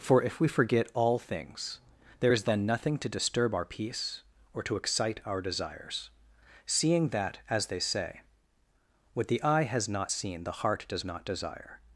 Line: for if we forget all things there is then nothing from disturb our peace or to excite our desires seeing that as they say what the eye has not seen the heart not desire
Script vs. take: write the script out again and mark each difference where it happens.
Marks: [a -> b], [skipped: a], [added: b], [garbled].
for if we forget all things there is then nothing [from -> to] disturb our peace or to excite our desires seeing that as they say what the eye has not seen the heart [added: does] not desire